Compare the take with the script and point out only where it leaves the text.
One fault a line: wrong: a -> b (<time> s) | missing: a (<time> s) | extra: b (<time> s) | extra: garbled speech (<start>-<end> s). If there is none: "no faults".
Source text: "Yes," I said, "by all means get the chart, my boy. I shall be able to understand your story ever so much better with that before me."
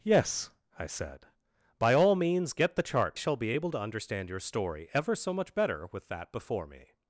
missing: my boy I (3.2 s)